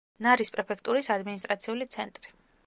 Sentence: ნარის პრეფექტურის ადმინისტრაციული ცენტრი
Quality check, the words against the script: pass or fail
pass